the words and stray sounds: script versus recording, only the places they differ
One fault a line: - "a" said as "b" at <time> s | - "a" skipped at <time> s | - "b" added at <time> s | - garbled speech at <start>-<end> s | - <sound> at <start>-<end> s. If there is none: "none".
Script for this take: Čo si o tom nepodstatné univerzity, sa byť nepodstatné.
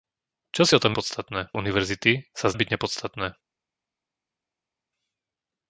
none